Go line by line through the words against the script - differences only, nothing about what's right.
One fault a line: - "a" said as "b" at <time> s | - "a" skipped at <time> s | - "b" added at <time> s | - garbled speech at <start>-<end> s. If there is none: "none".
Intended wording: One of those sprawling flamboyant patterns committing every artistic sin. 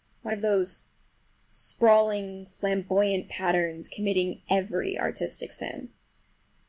none